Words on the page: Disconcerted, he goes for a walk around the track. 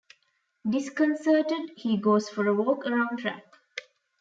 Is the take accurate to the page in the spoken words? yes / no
no